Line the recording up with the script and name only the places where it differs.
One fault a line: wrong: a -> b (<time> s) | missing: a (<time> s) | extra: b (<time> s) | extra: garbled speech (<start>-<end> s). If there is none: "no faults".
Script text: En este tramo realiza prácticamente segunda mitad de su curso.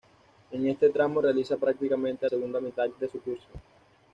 no faults